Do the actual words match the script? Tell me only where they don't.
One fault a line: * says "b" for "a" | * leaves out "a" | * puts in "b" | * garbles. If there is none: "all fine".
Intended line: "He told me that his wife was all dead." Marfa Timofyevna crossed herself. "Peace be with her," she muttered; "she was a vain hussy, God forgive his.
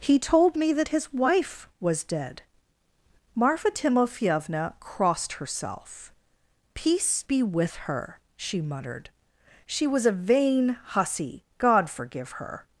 * leaves out "all"
* says "her" for "his"